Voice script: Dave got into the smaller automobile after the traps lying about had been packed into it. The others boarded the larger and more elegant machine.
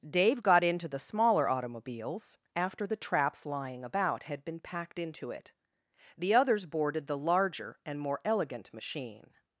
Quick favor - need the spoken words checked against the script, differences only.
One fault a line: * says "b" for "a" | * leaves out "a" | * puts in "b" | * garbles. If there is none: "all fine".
* says "automobiles" for "automobile"